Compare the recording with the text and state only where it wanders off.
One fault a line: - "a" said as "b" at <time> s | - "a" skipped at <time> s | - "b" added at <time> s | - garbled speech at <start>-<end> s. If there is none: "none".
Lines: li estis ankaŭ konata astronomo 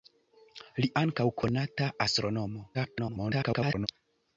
- "estis" skipped at 0.9 s
- garbled speech at 2.7-3.9 s